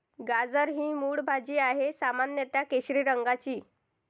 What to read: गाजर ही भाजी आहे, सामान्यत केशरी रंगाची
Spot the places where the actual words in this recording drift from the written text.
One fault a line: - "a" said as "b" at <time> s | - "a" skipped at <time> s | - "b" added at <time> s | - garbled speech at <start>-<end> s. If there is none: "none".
- "मूळ" added at 0.9 s